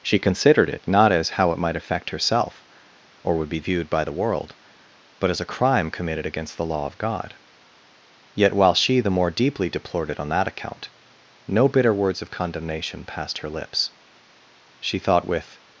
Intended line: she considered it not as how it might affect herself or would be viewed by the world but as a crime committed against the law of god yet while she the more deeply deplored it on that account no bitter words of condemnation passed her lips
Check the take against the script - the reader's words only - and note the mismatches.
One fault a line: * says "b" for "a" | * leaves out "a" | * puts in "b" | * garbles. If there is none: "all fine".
* puts in "she thought with"